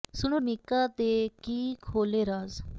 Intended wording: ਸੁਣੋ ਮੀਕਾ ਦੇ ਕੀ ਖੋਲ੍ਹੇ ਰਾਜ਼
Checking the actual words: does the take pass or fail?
pass